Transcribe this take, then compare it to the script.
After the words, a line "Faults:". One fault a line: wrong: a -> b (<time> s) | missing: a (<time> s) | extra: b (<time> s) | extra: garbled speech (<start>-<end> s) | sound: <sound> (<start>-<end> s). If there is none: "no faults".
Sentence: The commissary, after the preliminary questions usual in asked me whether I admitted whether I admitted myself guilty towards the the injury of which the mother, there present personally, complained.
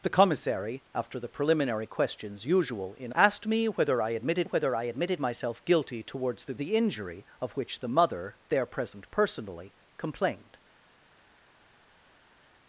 The commissary, after the preliminary questions usual in asked me whether I admitted whether I admitted myself guilty towards the the injury of which the mother, there present personally, complained.
Faults:
no faults